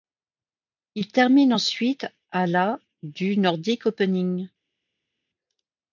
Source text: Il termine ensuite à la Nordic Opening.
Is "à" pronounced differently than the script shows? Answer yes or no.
no